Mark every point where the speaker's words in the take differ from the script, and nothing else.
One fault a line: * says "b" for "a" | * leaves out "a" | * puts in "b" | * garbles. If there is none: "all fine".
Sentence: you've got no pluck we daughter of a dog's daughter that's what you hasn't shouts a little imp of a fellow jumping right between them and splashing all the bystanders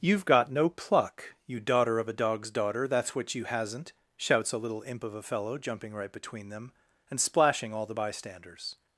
* says "you" for "we"